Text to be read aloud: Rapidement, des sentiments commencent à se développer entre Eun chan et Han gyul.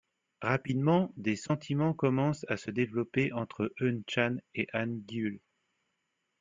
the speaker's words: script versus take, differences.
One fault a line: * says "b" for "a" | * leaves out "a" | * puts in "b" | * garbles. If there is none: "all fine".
all fine